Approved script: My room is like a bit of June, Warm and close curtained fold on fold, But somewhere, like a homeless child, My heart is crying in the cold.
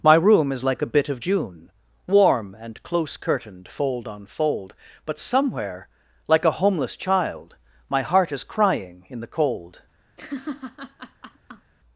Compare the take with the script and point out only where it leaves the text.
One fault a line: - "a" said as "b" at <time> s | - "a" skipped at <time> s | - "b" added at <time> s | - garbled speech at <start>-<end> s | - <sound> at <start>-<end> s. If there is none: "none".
- laugh at 10.2-11.7 s